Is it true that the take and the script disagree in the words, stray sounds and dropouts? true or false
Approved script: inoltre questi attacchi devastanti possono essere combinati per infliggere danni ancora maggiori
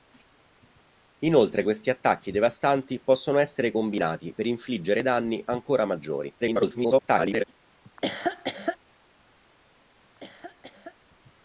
true